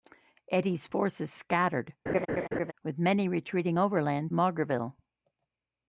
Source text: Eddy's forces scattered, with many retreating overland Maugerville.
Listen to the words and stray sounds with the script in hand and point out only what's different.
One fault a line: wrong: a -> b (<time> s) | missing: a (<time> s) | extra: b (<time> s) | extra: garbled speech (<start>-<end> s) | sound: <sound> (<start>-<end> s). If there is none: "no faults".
sound: laugh (2.1-2.7 s)